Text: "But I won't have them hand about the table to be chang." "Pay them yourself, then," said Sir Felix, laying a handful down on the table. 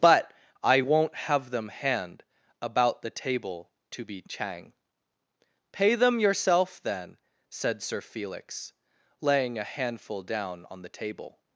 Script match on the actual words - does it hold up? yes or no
yes